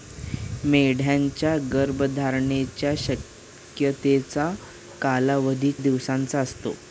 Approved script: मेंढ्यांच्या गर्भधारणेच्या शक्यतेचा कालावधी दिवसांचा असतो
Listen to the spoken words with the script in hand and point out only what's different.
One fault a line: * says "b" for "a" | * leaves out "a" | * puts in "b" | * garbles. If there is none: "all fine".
all fine